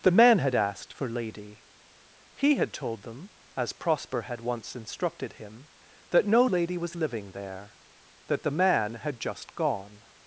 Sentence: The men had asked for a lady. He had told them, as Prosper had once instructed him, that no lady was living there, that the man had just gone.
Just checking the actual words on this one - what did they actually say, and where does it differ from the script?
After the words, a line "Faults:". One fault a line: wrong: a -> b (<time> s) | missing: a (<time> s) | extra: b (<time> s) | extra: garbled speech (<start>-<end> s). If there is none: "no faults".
The men had asked for lady. He had told them, as Prosper had once instructed him, that no lady was living there, that the man had just gone.
Faults:
missing: a (1.1 s)